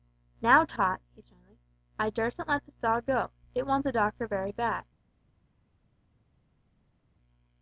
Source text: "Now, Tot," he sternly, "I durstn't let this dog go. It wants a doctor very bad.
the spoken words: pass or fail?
pass